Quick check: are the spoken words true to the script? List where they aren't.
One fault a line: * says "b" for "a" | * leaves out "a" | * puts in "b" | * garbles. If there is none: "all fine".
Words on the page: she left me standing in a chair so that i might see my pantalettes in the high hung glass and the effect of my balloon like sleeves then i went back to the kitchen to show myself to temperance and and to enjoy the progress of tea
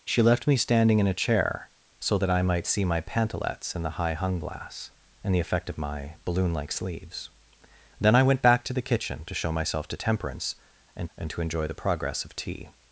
all fine